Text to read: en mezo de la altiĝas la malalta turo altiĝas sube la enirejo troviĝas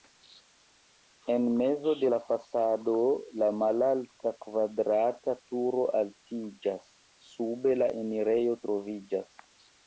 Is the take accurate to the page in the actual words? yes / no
no